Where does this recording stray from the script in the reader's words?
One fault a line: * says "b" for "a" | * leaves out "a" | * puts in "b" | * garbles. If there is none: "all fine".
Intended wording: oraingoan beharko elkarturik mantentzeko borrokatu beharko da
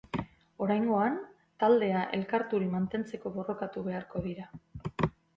* says "taldea" for "beharko"
* says "dira" for "da"